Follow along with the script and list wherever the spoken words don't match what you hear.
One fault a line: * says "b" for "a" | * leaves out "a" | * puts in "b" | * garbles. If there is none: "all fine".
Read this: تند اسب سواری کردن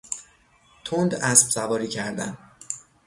all fine